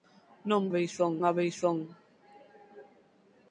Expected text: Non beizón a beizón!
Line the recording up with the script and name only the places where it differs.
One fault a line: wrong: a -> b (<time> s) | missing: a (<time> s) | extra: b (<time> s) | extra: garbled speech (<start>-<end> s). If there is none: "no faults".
no faults